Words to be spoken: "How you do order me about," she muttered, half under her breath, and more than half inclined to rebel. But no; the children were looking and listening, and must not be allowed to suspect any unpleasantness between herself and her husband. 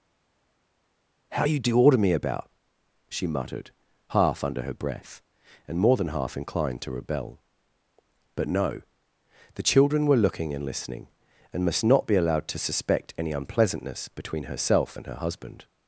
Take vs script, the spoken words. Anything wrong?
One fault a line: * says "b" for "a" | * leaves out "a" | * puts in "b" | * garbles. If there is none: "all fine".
all fine